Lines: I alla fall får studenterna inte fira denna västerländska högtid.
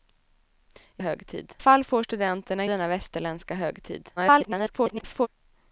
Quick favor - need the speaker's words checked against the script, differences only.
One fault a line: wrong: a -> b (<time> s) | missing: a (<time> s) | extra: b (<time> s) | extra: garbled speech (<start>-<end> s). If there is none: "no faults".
wrong: alla -> högtid (1.0 s)
missing: inte fira (2.6 s)
extra: garbled speech (4.2-5.3 s)